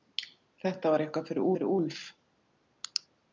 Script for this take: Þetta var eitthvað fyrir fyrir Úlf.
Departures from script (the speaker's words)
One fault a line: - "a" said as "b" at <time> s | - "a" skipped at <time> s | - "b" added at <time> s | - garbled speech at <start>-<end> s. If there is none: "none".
none